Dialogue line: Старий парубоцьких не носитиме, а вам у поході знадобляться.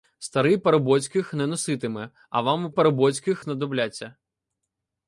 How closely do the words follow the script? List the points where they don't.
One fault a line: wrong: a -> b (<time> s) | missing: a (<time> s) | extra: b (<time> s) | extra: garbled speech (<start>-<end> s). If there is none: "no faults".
wrong: поході -> парубоцьких (2.7 s)